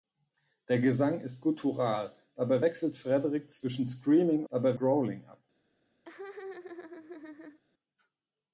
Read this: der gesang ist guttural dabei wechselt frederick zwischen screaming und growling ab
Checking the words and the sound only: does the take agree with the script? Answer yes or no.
no